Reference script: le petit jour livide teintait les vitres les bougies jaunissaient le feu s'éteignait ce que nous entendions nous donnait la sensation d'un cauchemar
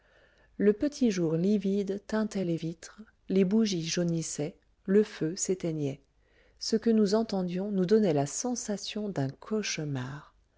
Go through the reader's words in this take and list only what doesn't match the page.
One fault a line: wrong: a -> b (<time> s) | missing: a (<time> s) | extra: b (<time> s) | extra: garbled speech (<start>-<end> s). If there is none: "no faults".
no faults